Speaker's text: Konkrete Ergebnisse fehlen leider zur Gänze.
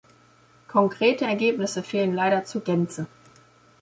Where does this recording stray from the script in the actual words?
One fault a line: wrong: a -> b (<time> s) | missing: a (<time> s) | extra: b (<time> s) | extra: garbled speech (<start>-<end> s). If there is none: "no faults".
no faults